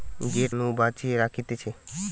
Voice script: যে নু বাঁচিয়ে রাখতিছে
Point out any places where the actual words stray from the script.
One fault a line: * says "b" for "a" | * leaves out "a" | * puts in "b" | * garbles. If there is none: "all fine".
all fine